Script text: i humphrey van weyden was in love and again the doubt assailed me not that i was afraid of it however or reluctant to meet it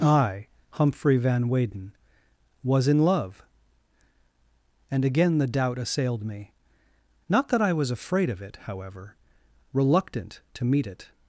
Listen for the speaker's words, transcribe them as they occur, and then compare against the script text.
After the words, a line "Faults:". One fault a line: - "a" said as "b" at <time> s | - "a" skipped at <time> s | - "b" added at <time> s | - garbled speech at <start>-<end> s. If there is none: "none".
i humphrey van weyden was in love and again the doubt assailed me not that i was afraid of it however reluctant to meet it
Faults:
- "or" skipped at 9.2 s